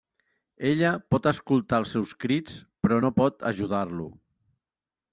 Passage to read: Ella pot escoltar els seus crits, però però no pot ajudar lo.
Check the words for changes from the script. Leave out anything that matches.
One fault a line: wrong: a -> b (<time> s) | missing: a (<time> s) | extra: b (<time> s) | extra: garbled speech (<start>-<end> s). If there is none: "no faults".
missing: però (3.0 s)